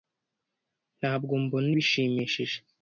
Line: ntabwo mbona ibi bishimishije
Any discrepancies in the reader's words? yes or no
yes